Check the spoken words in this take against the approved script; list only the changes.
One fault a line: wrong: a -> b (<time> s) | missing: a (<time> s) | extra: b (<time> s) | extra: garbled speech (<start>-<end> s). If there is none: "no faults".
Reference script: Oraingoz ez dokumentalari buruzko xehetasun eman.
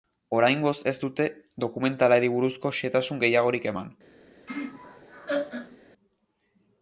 extra: dute (1.0 s)
extra: gehiagorik (3.2 s)